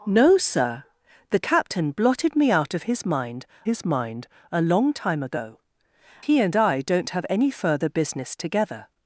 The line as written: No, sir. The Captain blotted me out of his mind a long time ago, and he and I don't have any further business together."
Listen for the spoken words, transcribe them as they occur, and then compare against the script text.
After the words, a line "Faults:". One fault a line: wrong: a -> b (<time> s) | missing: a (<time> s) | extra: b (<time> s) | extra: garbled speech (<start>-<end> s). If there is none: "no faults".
No, sir. The Captain blotted me out of his mind his mind a long time ago, he and I don't have any further business together."
Faults:
extra: his mind (3.6 s)
missing: and (5.6 s)